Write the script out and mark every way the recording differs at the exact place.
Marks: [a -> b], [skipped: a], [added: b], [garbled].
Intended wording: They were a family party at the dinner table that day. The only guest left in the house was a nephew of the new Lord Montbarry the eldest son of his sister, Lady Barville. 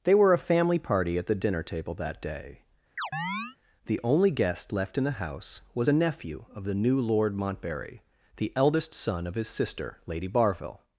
They were a family party at the dinner table that day. The only guest left in the house was a nephew of the new Lord Montbarry the eldest son of his sister, Lady Barville.